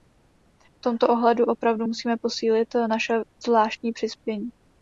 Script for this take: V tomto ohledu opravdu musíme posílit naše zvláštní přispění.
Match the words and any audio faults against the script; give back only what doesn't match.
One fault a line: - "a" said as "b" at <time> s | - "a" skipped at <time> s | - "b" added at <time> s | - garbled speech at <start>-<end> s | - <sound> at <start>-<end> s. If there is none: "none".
none